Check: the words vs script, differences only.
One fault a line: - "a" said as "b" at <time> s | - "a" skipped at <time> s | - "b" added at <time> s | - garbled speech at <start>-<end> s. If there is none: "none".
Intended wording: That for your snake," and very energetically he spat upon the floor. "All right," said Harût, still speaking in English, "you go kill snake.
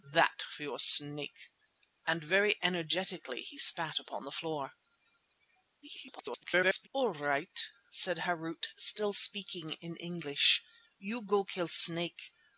- garbled speech at 5.8-6.9 s